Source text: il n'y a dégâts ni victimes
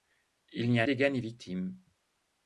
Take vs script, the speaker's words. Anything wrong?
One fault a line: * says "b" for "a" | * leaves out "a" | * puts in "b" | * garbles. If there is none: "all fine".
all fine